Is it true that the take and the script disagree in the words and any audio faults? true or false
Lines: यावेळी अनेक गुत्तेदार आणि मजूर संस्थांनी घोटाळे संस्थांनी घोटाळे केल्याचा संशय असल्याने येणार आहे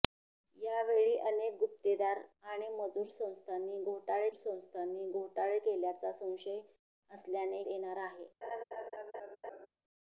true